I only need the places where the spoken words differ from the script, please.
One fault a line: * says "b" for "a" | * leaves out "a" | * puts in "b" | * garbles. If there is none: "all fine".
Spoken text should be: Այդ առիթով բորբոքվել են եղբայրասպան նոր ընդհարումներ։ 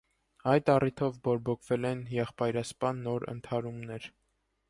all fine